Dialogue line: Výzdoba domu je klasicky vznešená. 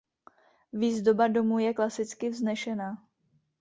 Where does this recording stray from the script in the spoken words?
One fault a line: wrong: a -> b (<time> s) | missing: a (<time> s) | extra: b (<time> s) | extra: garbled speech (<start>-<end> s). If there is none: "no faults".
no faults